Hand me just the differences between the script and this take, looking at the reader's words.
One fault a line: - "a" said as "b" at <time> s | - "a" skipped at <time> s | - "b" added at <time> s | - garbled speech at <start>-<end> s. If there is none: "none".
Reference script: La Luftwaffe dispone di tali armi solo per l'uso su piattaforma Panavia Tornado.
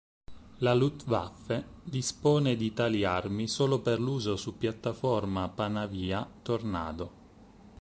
none